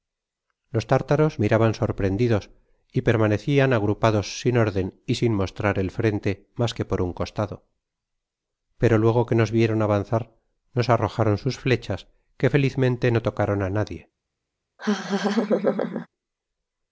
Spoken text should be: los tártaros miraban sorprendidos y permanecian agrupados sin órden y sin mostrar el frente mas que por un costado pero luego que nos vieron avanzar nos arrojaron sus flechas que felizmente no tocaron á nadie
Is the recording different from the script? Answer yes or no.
no